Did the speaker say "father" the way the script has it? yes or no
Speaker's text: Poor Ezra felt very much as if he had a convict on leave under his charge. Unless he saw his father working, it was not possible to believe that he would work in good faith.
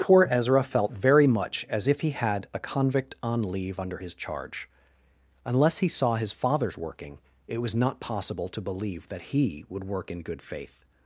no